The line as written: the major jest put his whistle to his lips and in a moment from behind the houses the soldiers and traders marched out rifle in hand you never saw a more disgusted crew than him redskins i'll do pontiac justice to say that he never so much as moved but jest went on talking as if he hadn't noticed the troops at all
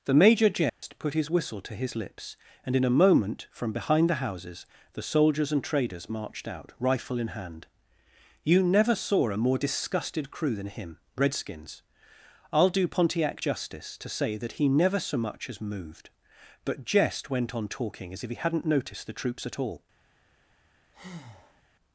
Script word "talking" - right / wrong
right